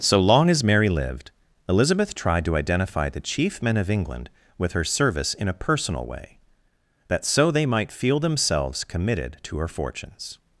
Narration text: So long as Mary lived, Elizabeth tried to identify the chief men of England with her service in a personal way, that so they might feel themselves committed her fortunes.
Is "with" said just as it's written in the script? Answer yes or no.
yes